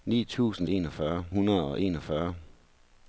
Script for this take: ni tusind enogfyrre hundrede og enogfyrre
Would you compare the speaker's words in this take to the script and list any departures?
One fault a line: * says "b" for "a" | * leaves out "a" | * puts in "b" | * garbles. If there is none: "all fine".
all fine